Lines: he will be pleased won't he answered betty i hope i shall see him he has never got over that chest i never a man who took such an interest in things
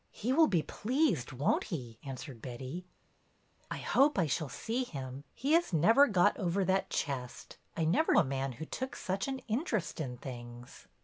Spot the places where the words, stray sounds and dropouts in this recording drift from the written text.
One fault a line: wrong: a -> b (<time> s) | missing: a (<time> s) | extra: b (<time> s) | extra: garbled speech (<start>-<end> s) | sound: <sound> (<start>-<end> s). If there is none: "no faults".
no faults